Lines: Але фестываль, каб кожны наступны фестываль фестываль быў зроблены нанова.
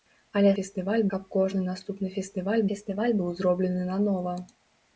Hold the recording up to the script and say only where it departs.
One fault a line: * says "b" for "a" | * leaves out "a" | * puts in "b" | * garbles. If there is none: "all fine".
all fine